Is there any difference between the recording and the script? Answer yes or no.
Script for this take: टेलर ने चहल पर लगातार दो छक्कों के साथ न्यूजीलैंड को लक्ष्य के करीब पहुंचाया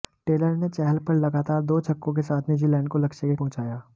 yes